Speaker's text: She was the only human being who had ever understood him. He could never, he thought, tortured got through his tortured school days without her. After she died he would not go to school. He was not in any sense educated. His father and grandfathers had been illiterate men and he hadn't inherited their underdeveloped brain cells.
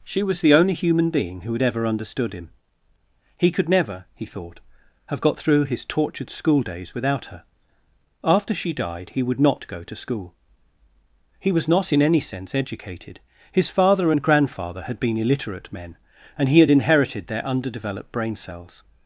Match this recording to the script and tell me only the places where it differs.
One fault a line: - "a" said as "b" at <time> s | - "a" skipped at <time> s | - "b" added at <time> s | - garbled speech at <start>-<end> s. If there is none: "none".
- "tortured" said as "have" at 5.1 s
- "grandfathers" said as "grandfather" at 14.2 s
- "hadn't" said as "had" at 16.6 s